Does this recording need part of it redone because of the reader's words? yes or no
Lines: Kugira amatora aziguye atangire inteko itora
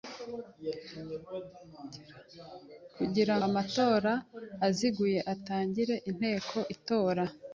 no